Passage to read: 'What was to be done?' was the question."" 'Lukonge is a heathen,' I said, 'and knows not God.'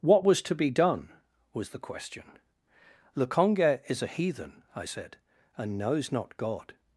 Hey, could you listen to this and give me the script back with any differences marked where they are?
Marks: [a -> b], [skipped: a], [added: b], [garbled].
'What was to be done?' was the question."" 'Lukonge is a heathen,' I said, 'and knows not God.'